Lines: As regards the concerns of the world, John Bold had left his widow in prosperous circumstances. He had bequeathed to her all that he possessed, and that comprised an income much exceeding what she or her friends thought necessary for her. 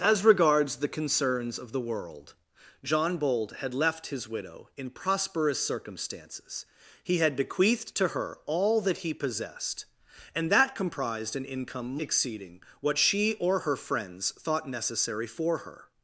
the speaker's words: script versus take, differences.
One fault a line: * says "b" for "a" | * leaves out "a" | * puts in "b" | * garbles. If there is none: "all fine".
* leaves out "much"